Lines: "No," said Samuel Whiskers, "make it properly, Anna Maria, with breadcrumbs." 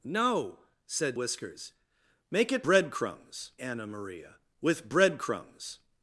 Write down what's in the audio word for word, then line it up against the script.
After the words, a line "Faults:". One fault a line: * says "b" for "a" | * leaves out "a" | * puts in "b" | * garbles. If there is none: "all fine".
"No," said Whiskers, "make it breadcrumbs, Anna Maria, with breadcrumbs."
Faults:
* leaves out "Samuel"
* says "breadcrumbs" for "properly"